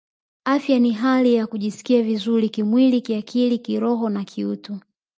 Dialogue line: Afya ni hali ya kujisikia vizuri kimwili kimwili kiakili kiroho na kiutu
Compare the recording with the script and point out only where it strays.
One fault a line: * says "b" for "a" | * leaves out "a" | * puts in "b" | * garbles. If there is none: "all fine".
* leaves out "kimwili"